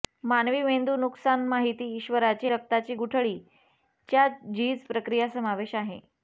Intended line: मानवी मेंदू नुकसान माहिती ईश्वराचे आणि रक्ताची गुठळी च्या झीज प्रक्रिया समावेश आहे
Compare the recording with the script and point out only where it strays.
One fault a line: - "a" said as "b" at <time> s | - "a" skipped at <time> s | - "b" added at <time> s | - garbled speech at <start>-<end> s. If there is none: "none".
- "आणि" skipped at 2.5 s